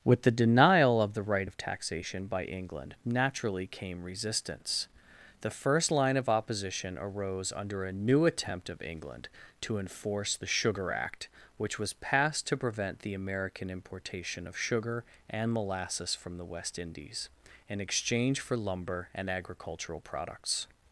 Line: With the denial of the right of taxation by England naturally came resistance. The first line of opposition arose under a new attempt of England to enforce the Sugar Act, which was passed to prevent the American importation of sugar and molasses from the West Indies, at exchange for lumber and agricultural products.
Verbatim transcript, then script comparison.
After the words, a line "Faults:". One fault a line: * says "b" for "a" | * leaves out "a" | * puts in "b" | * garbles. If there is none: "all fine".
With the denial of the right of taxation by England naturally came resistance. The first line of opposition arose under a new attempt of England to enforce the Sugar Act, which was passed to prevent the American importation of sugar and molasses from the West Indies, in exchange for lumber and agricultural products.
Faults:
* says "in" for "at"